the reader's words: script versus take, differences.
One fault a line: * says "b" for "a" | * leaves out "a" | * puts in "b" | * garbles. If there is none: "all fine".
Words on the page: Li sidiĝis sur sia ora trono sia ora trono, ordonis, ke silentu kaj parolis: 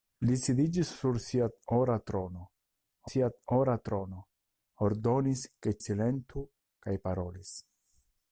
all fine